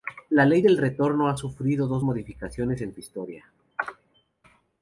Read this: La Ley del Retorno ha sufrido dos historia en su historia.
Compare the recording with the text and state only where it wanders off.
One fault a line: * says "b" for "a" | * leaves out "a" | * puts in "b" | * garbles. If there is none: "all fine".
* says "modificaciones" for "historia"